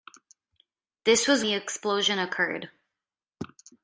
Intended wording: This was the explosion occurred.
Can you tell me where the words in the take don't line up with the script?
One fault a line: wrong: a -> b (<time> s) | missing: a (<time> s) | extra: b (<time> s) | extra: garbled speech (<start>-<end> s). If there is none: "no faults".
no faults